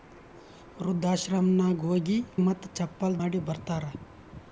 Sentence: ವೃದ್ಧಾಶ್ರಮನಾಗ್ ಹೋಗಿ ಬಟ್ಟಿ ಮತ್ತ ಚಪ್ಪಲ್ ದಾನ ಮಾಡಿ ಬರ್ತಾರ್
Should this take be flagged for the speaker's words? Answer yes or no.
yes